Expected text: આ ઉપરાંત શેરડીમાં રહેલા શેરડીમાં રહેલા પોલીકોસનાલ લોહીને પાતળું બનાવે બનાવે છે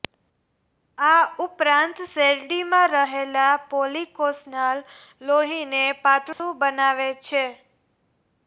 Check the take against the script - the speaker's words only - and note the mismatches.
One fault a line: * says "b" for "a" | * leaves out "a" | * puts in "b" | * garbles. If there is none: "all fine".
* leaves out "શેરડીમાં રહેલા"
* leaves out "બનાવે"